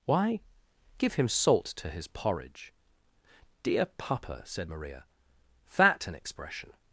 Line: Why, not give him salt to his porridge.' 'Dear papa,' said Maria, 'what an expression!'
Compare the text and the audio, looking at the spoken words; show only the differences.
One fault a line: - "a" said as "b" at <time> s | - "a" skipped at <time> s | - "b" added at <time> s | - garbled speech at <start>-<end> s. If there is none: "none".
- "not" skipped at 0.4 s
- "what" said as "that" at 5.8 s